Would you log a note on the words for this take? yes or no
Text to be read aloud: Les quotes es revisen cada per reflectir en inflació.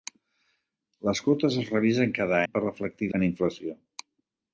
no